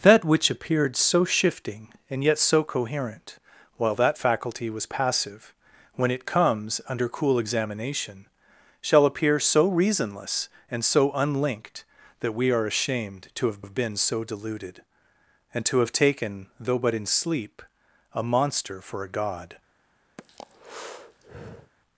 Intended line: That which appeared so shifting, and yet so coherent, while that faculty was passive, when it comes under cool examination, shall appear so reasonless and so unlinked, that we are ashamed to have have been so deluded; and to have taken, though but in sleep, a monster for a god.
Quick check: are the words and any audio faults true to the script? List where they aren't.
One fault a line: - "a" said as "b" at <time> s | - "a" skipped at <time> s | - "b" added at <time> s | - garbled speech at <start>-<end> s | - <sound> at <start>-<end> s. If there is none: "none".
- breath at 20.2-21.7 s